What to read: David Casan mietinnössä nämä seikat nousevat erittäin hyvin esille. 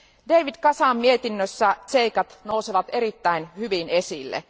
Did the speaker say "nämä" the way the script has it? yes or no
no